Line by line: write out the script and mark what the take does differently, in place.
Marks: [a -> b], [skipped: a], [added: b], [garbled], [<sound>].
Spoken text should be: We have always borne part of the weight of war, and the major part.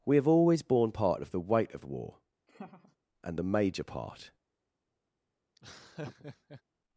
We have always borne part of the weight of war, [laugh] and the major part. [laugh]